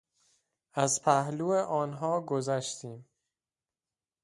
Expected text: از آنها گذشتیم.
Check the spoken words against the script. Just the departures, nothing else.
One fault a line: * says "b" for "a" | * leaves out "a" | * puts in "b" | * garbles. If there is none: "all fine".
* puts in "پهلو"